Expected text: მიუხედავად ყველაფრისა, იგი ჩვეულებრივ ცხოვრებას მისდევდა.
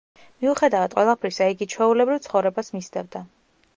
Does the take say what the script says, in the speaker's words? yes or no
yes